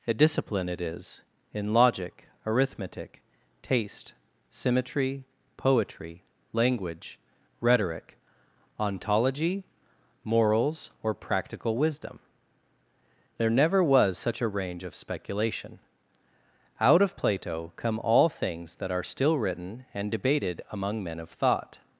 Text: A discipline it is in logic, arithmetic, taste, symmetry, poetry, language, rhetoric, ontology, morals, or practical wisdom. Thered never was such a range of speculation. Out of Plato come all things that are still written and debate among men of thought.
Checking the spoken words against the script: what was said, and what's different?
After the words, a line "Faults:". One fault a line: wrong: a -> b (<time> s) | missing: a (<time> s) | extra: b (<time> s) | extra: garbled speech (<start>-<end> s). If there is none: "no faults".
A discipline it is in logic, arithmetic, taste, symmetry, poetry, language, rhetoric, ontology, morals, or practical wisdom. There never was such a range of speculation. Out of Plato come all things that are still written and debated among men of thought.
Faults:
wrong: Thered -> There (13.4 s)
wrong: debate -> debated (20.1 s)